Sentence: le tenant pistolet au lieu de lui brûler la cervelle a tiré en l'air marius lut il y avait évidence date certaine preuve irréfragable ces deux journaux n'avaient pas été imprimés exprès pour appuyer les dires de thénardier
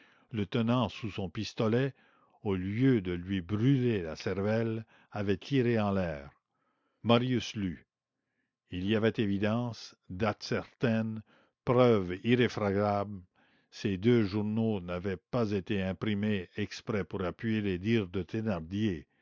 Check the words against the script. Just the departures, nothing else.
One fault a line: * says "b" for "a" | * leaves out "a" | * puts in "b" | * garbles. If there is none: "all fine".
* puts in "sous son"
* says "avait" for "a"